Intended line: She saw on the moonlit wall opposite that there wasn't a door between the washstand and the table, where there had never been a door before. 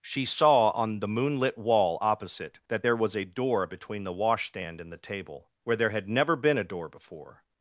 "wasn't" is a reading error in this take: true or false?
true